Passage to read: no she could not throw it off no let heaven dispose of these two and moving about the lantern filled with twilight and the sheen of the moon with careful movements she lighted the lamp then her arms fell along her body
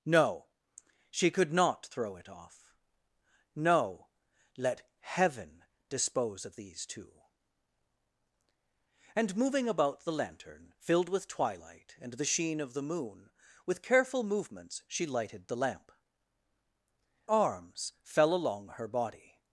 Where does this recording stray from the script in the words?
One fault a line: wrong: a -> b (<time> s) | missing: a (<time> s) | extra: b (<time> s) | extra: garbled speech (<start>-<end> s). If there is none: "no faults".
missing: then her (15.9 s)